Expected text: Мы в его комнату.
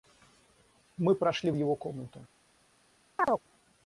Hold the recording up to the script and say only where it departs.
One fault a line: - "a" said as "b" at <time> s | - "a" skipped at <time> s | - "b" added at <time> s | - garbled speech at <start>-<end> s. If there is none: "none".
- "прошли" added at 1.1 s